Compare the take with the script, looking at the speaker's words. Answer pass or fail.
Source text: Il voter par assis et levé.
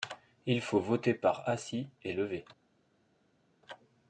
fail